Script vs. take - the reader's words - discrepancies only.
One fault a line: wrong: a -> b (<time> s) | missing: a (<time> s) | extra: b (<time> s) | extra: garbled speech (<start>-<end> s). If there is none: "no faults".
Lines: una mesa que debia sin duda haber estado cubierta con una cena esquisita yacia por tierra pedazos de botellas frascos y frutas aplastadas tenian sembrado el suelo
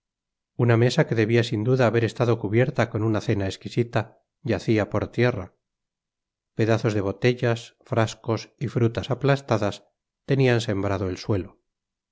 no faults